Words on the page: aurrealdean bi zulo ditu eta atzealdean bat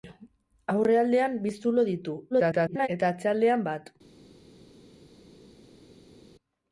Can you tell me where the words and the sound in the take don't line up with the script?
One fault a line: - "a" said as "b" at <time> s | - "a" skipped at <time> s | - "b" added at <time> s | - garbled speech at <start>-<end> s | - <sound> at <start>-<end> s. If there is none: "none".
- garbled speech at 2.3-2.9 s